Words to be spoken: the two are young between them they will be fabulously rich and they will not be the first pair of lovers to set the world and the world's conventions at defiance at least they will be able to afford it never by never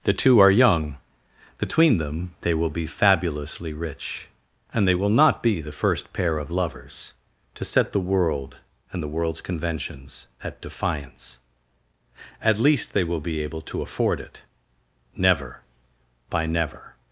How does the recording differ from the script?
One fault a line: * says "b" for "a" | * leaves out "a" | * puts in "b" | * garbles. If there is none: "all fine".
all fine